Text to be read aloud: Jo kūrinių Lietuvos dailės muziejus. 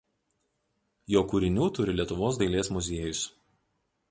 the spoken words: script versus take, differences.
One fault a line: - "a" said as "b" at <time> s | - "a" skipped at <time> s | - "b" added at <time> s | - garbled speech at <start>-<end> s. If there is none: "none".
- "turi" added at 1.8 s